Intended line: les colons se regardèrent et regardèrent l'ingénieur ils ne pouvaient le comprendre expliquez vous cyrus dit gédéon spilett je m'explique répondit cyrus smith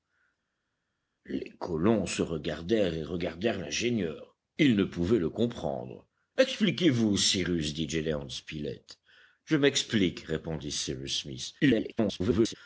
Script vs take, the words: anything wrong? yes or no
yes